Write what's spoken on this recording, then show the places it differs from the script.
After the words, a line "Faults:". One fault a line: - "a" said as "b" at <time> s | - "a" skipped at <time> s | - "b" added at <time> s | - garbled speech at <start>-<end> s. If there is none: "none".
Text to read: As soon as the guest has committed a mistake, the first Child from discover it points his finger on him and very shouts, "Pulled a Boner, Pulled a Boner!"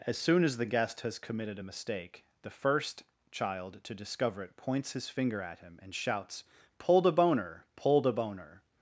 As soon as the guest has committed a mistake, the first Child to discover it points his finger at him and shouts, "Pulled a Boner, Pulled a Boner!"
Faults:
- "from" said as "to" at 3.8 s
- "on" said as "at" at 5.4 s
- "very" skipped at 5.9 s